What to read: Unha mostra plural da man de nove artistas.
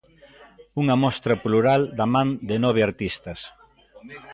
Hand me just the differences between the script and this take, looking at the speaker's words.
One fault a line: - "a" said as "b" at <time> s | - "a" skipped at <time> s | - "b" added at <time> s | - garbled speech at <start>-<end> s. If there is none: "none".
none